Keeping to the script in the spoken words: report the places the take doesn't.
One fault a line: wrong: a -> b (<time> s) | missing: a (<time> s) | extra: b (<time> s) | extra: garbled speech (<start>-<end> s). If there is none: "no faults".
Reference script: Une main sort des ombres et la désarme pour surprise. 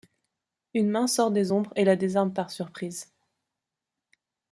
wrong: pour -> par (2.3 s)